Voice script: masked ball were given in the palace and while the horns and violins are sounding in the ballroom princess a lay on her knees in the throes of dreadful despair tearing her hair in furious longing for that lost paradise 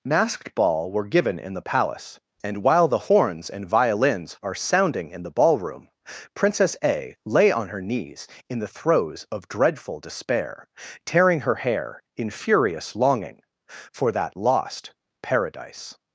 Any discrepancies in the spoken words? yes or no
no